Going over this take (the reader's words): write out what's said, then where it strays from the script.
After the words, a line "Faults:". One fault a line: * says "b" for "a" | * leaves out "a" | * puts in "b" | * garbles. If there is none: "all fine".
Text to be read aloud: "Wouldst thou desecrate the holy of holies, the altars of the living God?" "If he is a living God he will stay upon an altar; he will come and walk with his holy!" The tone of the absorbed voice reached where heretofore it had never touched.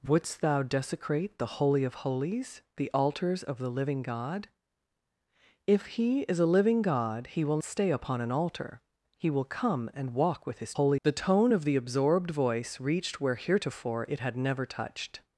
"Wouldst thou desecrate the holy of holies, the altars of the living God?" "If he is a living God he will stay upon an altar; he will come and walk with his holy!" The tone of the absorbed voice reached where heretofore it had never touched.
Faults:
all fine